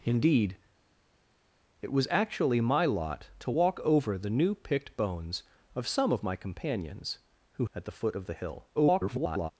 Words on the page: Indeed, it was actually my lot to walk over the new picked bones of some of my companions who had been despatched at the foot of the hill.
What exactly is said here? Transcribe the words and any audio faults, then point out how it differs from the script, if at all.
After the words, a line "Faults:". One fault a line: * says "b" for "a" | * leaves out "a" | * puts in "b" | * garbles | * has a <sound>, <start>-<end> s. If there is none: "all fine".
Indeed, it was actually my lot to walk over the new picked bones of some of my companions who at the foot of the hill. [garbled]
Faults:
* leaves out "had been despatched"
* garbles